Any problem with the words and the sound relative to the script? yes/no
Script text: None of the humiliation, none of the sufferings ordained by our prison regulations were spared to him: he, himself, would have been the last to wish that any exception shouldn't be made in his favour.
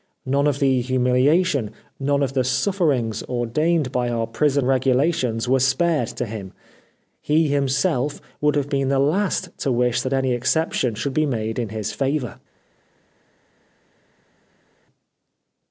yes